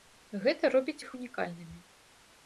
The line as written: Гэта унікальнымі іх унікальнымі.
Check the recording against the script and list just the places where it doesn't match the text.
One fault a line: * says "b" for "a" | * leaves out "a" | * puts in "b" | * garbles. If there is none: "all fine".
* says "робіць" for "унікальнымі"